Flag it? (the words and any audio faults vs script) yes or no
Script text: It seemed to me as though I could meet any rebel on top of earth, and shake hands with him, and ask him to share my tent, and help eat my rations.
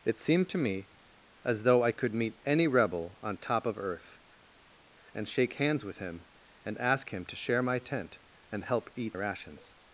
yes